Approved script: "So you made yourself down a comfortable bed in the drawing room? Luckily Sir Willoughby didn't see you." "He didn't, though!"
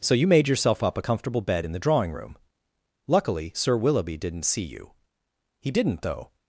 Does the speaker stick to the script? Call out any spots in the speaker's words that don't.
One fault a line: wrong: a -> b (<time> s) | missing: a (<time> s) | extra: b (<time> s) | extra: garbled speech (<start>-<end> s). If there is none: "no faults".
wrong: down -> up (0.8 s)